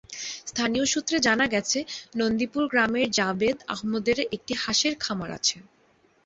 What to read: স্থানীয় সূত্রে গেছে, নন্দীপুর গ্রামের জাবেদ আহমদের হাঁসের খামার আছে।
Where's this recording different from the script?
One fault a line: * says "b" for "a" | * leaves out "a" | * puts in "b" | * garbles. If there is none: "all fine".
* puts in "জানা"
* puts in "একটি"